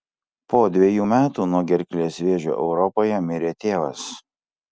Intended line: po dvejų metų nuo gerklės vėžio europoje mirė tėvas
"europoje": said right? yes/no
yes